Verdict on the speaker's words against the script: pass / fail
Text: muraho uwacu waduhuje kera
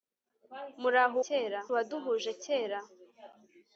fail